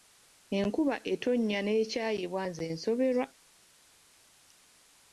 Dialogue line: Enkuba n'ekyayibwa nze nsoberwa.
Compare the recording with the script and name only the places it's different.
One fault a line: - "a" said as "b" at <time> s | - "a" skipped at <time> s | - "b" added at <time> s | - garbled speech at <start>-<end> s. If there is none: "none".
- "etonnya" added at 1.1 s